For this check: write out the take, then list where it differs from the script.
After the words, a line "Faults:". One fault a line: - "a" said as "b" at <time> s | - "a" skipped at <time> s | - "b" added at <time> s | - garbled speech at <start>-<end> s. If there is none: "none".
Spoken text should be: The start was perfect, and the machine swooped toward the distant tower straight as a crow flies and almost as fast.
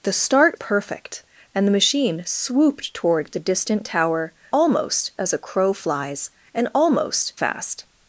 The start perfect, and the machine swooped toward the distant tower almost as a crow flies and almost fast.
Faults:
- "was" skipped at 0.6 s
- "straight" said as "almost" at 4.5 s
- "as" skipped at 7.3 s